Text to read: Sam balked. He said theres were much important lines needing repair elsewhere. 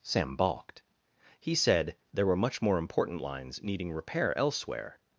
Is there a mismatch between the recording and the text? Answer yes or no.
yes